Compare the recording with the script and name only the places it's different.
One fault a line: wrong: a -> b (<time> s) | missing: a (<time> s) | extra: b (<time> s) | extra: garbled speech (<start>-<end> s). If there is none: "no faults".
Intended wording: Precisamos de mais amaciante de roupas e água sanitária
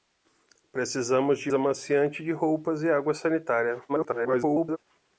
missing: mais (1.5 s)
extra: garbled speech (3.9-4.8 s)